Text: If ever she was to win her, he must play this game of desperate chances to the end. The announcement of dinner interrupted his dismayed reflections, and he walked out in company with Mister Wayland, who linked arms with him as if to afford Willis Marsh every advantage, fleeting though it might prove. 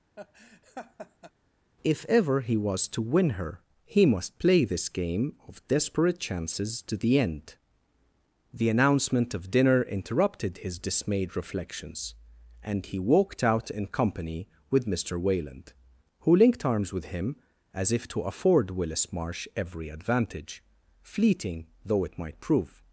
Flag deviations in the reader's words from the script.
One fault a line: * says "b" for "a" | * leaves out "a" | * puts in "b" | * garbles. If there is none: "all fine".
* says "he" for "she"